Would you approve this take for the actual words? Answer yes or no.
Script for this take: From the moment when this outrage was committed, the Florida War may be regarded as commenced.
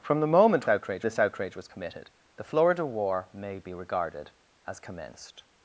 no